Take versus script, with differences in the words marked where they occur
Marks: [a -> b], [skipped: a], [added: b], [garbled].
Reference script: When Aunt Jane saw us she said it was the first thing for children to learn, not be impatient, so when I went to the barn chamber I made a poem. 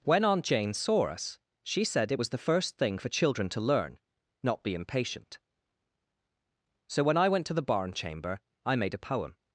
When Aunt Jane saw us she said it was the first thing for children to learn, not be impatient, so when I went to the barn chamber I made a poem.